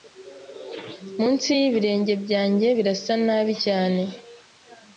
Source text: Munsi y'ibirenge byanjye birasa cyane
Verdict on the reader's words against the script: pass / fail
fail